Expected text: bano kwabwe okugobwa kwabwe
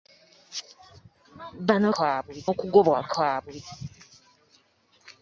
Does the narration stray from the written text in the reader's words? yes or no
no